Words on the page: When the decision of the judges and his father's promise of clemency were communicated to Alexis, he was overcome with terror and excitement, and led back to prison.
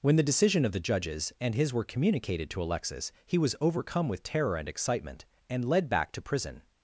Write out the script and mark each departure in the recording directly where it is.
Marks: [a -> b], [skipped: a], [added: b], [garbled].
When the decision of the judges and his [skipped: father's promise of clemency] were communicated to Alexis, he was overcome with terror and excitement, and led back to prison.